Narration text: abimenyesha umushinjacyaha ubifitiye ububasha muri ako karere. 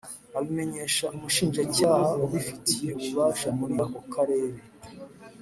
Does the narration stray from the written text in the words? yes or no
no